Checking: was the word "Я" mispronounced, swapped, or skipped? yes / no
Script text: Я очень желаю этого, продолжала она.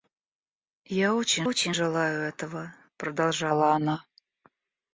no